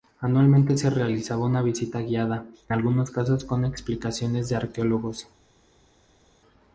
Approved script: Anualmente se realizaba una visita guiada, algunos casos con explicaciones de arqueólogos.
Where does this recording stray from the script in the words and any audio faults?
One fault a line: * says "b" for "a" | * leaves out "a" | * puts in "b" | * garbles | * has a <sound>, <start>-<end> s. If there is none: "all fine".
all fine